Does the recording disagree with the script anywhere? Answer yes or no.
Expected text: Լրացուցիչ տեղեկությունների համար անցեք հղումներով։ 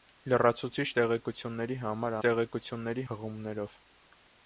yes